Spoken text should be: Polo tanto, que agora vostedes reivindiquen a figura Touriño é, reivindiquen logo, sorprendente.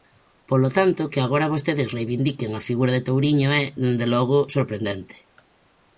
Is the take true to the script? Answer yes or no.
no